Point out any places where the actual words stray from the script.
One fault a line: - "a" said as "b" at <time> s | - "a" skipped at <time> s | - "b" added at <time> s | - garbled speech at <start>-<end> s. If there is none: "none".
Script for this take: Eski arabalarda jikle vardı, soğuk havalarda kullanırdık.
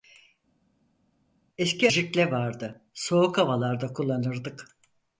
- "arabalarda" skipped at 1.9 s